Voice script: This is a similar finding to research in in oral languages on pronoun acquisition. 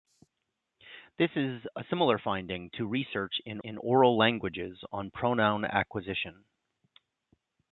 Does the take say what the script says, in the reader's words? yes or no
yes